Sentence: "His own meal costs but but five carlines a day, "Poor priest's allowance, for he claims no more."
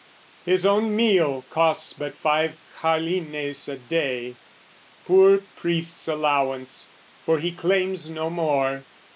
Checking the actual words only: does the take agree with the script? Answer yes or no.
no